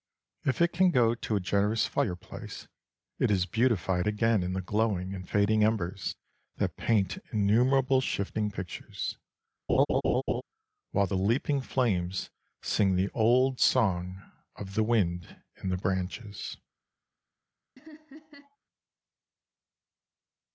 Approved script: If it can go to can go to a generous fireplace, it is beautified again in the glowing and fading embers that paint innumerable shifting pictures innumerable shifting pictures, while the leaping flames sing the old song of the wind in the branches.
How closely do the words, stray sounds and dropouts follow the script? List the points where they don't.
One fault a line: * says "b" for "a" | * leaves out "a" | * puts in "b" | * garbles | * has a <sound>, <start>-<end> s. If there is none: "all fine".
* leaves out "can go to"
* leaves out "innumerable shifting pictures"
* has a laugh, 9.7-10.4 s
* has a laugh, 17.8-18.6 s